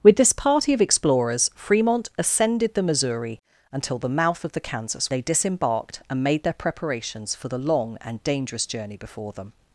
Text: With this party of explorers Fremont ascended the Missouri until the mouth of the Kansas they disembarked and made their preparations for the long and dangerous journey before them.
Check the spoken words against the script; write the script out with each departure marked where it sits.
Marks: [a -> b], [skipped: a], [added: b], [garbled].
With this party of explorers Fremont ascended the Missouri until the mouth of the Kansas they disembarked and made their preparations for the long and dangerous journey before them.